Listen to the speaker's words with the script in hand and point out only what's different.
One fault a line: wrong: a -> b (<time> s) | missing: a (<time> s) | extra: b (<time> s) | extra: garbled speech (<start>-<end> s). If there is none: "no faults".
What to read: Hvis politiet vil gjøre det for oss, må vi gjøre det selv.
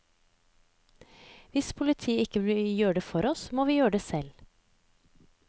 extra: ikke (2.2 s)